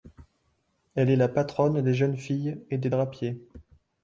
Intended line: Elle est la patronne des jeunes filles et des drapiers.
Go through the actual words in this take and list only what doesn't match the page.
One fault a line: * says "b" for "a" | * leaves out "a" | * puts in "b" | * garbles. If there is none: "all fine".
all fine